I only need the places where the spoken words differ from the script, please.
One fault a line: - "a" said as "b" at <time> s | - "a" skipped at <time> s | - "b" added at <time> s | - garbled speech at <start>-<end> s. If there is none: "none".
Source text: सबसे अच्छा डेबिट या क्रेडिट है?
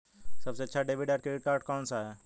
- "कार्ड कौन सा" added at 1.4 s